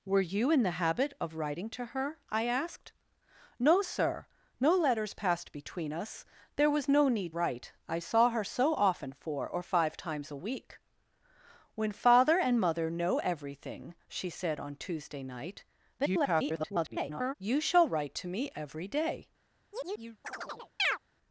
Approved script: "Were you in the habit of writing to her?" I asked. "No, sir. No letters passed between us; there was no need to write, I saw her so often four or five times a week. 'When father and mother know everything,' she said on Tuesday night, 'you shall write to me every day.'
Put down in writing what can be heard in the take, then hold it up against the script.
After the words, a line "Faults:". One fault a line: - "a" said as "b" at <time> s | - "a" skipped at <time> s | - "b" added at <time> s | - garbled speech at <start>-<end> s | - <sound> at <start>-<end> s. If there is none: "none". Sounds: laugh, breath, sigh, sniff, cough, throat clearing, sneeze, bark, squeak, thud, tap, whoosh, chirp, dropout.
"Were you in the habit of writing to her?" I asked. "No, sir. No letters passed between us; there was no need write, I saw her so often four or five times a week. 'When father and mother know everything,' she said on Tuesday night, [garbled] 'you shall write to me every day.'
Faults:
- "to" skipped at 7.3 s
- garbled speech at 16.0-17.3 s
- chirp at 19.7-21.0 s